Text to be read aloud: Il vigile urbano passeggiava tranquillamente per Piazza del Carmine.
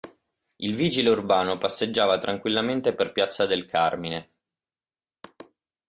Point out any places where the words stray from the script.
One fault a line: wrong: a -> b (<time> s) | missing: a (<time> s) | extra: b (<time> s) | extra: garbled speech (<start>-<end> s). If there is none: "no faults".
no faults